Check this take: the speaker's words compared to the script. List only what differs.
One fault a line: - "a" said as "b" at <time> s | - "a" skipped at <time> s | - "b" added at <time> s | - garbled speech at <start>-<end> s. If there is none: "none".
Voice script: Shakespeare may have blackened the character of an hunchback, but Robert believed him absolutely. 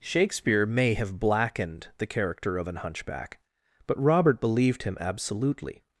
none